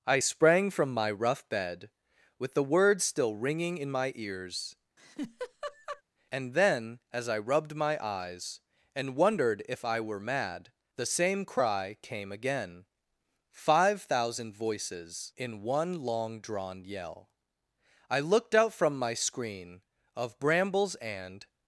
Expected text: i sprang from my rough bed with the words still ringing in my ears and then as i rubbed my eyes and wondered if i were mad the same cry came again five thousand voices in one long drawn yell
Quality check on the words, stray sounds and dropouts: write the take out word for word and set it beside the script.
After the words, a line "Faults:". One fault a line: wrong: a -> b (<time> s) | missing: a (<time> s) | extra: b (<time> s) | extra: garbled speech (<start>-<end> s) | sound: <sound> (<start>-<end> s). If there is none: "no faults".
i sprang from my rough bed with the words still ringing in my ears and then as i rubbed my eyes and wondered if i were mad the same cry came again five thousand voices in one long drawn yell i looked out from my screen of brambles and
Faults:
sound: laugh (5.0-6.0 s)
extra: i looked out from my screen of brambles and (18.1 s)